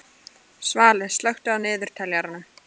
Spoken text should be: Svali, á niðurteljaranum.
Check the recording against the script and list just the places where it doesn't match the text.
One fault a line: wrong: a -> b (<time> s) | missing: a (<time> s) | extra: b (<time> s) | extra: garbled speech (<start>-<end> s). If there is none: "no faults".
extra: slökktu (1.2 s)